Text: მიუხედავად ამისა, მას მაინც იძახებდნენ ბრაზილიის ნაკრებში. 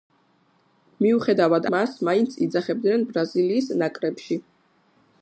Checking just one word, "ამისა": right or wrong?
wrong